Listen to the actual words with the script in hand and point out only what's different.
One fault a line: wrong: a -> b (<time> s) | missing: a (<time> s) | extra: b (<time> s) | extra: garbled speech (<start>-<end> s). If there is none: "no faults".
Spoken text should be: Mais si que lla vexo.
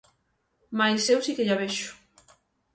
extra: eu (1.1 s)